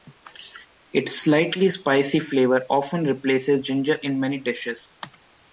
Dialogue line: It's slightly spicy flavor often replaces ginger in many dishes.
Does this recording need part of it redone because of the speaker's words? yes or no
no